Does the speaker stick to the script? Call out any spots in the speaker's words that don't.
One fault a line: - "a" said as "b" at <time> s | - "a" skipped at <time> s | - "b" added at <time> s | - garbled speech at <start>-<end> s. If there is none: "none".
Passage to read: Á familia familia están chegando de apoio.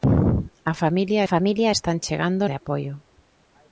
none